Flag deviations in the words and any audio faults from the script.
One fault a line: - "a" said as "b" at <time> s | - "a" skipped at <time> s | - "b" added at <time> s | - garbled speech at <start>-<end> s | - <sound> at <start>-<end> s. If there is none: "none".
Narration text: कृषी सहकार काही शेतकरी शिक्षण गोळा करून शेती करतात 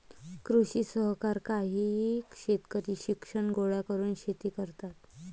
none